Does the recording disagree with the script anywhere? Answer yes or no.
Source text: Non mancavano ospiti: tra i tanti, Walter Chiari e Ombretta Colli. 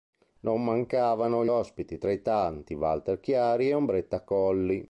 no